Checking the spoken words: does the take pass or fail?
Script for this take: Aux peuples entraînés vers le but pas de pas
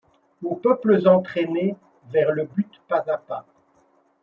fail